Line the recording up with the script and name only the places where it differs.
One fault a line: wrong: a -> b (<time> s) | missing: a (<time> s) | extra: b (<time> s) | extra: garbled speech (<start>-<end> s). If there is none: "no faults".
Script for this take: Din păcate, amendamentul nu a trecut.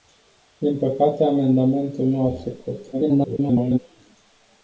extra: garbled speech (2.9-3.8 s)